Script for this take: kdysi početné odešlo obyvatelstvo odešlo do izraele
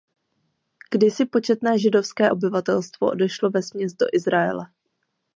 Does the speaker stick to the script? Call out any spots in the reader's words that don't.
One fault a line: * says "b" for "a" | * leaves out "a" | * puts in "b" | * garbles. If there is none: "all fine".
* says "židovské" for "odešlo"
* puts in "vesměs"